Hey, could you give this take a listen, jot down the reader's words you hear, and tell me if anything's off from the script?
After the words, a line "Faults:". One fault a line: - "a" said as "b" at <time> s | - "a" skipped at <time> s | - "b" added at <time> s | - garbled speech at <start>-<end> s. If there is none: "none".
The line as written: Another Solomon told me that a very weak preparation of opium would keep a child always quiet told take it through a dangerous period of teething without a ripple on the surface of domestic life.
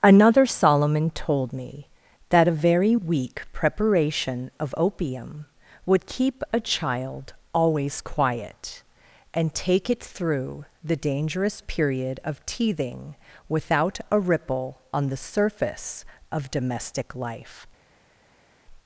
Another Solomon told me that a very weak preparation of opium would keep a child always quiet and take it through the dangerous period of teething without a ripple on the surface of domestic life.
Faults:
- "told" said as "and" at 9.3 s
- "a" said as "the" at 10.8 s